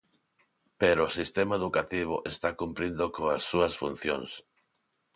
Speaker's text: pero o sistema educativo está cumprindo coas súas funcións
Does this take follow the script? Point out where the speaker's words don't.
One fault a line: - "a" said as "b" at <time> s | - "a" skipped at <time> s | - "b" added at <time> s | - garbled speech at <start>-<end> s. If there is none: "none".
none